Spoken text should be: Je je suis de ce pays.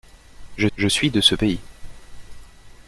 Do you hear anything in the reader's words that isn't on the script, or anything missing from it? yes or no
no